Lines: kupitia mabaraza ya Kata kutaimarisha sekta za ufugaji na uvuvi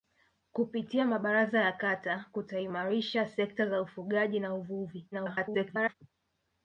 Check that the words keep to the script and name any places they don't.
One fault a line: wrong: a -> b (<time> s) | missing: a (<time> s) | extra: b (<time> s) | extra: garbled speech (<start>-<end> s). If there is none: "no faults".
extra: garbled speech (5.1-5.9 s)